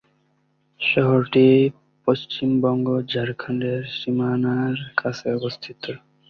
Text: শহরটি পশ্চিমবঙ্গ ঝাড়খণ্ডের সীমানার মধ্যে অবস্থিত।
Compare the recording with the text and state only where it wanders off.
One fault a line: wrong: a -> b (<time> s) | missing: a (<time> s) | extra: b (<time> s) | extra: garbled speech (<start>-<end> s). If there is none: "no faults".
wrong: মধ্যে -> কাছে (5.0 s)